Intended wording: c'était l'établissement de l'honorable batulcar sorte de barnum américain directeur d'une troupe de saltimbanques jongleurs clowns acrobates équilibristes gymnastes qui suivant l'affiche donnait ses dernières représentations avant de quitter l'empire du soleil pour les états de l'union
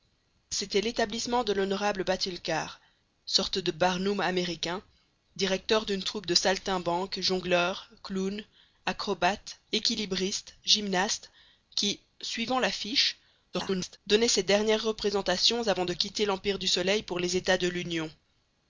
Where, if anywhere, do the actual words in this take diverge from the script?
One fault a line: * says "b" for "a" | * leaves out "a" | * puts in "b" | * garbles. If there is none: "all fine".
* garbles